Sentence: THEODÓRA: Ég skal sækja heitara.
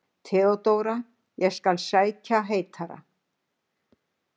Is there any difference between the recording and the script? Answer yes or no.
no